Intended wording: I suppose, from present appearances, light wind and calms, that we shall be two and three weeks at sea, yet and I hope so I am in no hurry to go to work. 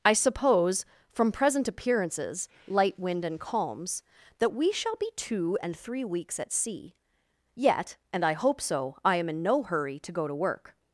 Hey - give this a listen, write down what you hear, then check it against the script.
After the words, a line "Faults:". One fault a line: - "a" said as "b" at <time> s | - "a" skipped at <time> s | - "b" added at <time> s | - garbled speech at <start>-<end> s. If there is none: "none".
I suppose, from present appearances, light wind and calms, that we shall be two and three weeks at sea, yet and I hope so I am in no hurry to go to work.
Faults:
none